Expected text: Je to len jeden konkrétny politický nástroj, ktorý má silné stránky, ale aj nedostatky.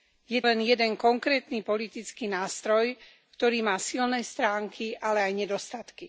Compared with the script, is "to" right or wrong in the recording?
wrong